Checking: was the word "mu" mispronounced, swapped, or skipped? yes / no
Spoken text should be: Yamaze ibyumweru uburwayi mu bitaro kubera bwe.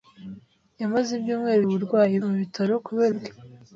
no